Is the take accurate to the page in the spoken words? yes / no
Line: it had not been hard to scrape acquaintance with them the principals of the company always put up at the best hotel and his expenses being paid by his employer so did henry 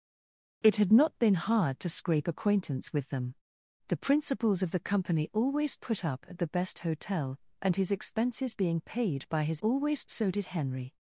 no